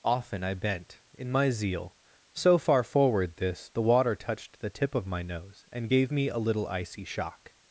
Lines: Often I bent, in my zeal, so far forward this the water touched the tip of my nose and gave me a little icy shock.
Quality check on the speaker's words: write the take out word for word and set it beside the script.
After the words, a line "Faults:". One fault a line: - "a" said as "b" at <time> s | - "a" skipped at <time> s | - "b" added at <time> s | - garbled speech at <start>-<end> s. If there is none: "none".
Often I bent, in my zeal, so far forward this the water touched the tip of my nose and gave me a little icy shock.
Faults:
none